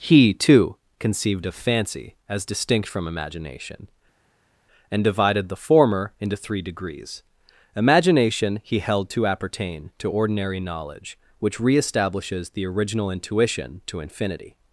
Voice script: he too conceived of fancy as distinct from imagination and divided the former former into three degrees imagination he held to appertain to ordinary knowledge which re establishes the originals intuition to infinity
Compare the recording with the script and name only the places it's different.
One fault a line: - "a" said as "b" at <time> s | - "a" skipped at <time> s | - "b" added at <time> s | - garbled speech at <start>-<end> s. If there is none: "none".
- "former" skipped at 6.1 s
- "originals" said as "original" at 12.6 s